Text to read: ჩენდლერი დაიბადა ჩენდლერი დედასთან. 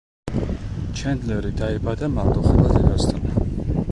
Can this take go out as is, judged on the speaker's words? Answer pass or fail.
fail